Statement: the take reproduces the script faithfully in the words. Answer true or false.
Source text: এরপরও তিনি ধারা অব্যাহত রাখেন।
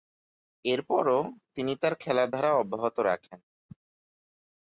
false